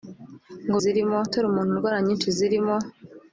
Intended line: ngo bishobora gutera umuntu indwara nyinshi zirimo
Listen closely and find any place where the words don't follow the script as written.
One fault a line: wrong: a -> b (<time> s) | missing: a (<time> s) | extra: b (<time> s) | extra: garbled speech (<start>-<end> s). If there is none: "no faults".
wrong: bishobora -> zirimo (0.8 s)